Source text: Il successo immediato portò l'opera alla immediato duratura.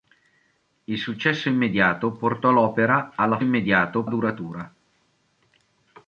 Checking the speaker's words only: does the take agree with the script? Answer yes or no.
yes